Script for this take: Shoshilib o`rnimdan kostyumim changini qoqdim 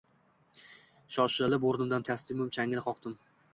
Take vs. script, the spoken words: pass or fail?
pass